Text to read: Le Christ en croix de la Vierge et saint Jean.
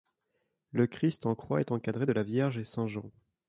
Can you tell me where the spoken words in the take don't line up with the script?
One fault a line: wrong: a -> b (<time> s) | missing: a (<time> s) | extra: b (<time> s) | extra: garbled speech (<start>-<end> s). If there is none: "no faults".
extra: est encadré (1.6 s)